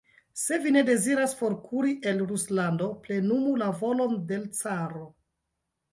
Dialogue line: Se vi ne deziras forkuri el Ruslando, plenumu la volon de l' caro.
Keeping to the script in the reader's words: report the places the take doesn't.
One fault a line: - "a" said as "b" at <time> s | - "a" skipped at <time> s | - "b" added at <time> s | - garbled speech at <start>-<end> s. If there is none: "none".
none